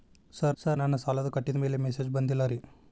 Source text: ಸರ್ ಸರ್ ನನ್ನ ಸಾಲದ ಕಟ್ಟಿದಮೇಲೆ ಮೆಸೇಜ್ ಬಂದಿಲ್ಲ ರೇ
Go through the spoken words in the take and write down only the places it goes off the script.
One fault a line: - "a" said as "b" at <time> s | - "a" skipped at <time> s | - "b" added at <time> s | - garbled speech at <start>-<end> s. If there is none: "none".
none